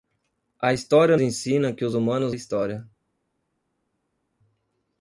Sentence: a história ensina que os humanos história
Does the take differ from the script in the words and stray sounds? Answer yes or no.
no